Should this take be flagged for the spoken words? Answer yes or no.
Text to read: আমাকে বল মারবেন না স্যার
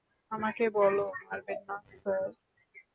no